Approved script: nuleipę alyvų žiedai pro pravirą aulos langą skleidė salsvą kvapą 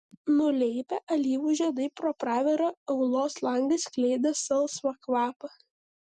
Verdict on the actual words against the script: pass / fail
pass